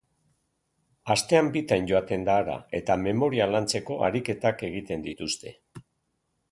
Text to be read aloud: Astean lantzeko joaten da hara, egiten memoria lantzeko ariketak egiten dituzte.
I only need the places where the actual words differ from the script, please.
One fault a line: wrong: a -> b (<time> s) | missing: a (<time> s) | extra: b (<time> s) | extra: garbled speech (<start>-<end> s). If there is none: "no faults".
wrong: lantzeko -> bitan (1.6 s)
wrong: egiten -> eta (2.8 s)